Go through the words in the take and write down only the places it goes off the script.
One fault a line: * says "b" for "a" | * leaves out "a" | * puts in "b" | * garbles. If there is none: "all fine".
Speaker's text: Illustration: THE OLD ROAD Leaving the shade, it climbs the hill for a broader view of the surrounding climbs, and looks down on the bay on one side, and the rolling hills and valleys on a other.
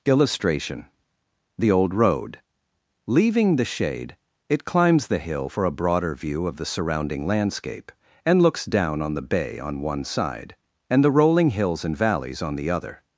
* says "landscape" for "climbs"
* says "the" for "a"